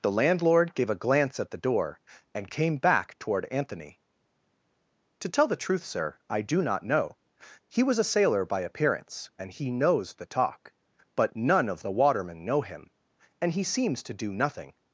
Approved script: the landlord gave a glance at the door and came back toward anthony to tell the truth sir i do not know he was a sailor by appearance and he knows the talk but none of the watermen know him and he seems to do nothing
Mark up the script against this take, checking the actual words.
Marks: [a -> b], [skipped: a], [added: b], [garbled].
the landlord gave a glance at the door and came back toward anthony to tell the truth sir i do not know he was a sailor by appearance and he knows the talk but none of the watermen know him and he seems to do nothing